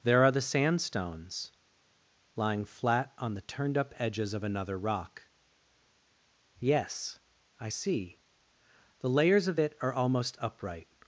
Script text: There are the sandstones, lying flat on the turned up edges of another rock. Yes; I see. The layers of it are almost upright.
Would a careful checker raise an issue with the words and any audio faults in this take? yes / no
no